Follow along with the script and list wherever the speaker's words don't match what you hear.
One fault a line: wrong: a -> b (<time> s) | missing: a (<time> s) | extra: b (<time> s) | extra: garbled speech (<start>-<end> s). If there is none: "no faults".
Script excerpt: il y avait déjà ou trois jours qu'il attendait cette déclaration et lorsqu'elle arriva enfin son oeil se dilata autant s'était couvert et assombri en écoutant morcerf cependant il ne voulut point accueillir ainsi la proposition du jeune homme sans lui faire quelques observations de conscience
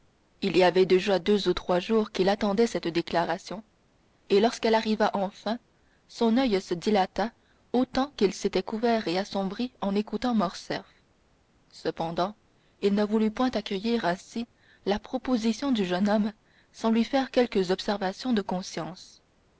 extra: deux (1.2 s)
extra: qu'il (8.2 s)